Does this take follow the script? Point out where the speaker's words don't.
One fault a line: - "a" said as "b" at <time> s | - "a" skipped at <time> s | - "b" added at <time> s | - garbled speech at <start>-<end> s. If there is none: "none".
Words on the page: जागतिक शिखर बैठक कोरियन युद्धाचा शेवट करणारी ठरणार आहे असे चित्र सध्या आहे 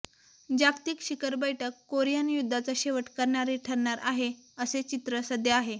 none